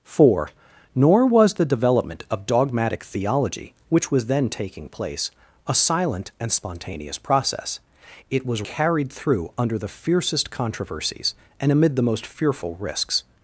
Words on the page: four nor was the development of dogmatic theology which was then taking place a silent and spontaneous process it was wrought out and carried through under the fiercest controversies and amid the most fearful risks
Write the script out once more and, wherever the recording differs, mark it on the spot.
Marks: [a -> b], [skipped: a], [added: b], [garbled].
four nor was the development of dogmatic theology which was then taking place a silent and spontaneous process it was [skipped: wrought out and] carried through under the fiercest controversies and amid the most fearful risks